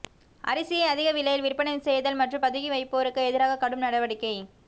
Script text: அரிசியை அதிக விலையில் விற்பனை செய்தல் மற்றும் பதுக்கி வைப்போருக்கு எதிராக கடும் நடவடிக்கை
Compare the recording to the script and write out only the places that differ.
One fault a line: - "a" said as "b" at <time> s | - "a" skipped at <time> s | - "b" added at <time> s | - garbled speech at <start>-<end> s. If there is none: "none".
none